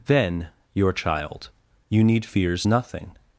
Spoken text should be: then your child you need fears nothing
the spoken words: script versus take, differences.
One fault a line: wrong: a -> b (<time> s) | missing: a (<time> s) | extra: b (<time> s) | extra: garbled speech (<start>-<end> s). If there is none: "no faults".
no faults